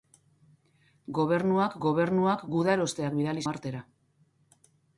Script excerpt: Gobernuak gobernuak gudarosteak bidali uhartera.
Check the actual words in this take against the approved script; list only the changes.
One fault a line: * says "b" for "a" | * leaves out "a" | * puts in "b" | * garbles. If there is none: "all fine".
all fine